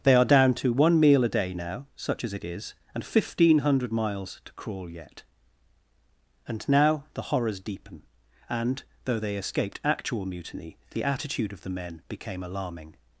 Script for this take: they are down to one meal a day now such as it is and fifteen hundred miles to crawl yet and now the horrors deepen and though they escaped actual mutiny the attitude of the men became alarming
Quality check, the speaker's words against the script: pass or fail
pass